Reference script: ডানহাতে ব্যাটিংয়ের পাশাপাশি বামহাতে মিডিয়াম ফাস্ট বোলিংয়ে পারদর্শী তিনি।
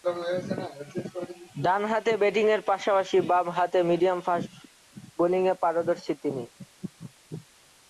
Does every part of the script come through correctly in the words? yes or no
yes